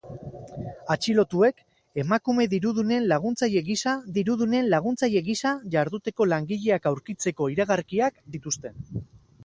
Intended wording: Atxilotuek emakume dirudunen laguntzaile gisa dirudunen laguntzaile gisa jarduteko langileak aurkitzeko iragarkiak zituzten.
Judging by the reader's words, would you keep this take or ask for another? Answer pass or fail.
pass